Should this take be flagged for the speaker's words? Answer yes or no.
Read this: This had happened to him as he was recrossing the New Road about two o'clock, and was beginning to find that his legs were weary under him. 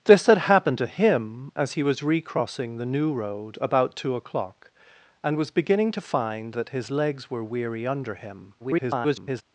yes